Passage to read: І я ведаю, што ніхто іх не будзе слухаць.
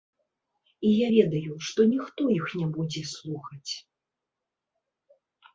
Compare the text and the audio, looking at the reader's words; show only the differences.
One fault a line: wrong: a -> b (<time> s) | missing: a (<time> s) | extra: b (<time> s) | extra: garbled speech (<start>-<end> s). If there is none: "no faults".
no faults